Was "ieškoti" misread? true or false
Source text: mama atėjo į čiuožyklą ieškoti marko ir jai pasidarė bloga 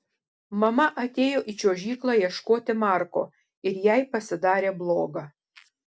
false